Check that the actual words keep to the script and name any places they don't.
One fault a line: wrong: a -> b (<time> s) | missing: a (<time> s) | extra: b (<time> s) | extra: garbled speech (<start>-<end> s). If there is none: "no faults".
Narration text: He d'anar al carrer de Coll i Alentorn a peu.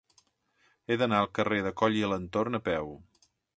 no faults